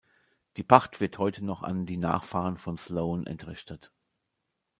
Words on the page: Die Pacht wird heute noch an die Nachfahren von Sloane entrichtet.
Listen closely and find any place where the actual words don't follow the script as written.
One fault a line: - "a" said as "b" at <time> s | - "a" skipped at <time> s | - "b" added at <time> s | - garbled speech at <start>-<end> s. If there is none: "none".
none